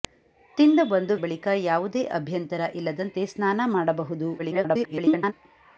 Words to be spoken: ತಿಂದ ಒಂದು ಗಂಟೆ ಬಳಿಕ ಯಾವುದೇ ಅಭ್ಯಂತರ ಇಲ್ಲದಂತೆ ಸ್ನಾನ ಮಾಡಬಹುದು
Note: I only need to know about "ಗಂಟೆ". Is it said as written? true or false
false